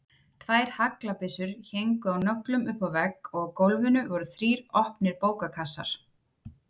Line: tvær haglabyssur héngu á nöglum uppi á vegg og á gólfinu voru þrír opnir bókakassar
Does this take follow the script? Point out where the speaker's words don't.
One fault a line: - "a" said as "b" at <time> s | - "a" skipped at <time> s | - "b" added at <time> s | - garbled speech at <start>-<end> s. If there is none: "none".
none